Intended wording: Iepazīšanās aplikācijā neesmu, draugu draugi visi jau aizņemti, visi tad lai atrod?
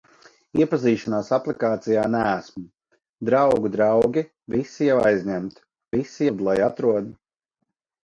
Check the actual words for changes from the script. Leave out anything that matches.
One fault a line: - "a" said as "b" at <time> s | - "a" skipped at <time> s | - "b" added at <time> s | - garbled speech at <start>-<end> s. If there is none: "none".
none